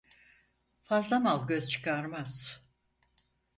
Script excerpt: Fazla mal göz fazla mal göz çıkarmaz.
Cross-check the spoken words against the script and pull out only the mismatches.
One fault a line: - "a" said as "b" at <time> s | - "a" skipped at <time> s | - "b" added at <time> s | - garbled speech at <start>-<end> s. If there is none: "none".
- "fazla mal göz" skipped at 1.7 s